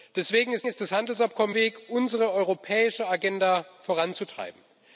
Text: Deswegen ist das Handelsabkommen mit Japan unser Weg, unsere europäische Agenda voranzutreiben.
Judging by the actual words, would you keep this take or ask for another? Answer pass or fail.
fail